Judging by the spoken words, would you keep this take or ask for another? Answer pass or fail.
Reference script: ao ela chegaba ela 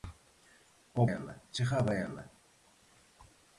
pass